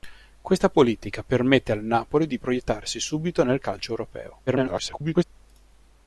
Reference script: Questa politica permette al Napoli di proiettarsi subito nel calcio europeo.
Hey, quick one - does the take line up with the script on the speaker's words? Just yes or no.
no